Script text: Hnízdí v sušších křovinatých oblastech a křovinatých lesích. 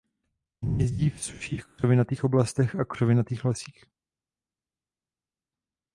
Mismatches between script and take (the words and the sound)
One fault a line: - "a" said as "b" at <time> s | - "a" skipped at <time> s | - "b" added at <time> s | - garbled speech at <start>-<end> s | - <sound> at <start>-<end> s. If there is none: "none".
none